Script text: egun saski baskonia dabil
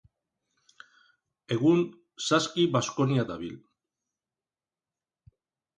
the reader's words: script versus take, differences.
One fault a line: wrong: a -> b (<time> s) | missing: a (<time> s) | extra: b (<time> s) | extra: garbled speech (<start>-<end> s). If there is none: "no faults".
no faults